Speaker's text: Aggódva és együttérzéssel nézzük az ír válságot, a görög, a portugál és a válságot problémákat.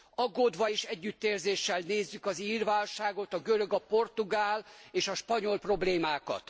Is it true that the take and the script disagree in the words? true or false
true